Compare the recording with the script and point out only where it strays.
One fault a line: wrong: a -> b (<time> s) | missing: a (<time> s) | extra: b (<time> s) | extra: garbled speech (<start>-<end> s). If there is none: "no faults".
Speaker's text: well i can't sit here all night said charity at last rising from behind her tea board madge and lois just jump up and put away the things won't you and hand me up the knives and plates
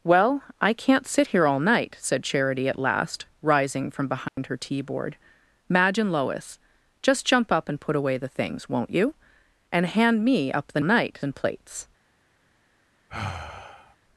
wrong: knives -> night (10.8 s)